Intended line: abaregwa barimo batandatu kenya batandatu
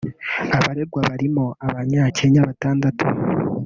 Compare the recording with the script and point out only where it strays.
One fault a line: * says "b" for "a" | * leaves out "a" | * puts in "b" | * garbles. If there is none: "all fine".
* says "abanya" for "batandatu"